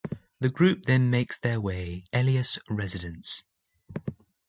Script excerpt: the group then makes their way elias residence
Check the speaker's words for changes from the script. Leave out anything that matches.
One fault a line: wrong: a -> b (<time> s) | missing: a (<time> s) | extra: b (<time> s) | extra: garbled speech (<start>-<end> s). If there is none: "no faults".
no faults